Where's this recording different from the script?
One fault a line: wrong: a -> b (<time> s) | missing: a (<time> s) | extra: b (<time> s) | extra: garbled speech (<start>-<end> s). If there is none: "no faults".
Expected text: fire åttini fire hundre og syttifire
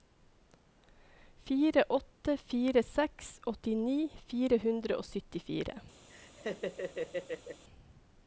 extra: åtte fire seks (1.9 s)